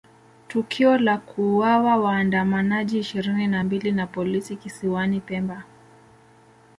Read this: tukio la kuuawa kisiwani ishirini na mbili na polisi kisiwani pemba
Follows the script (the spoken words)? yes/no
no